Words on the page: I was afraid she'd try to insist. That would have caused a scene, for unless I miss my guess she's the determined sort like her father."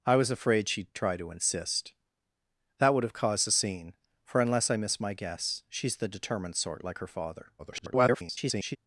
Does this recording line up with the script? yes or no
no